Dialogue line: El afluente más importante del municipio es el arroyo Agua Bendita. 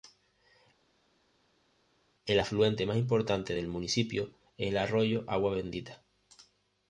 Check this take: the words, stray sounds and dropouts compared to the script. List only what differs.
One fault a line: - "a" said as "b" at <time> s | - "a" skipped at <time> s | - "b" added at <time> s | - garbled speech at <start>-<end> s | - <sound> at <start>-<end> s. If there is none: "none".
none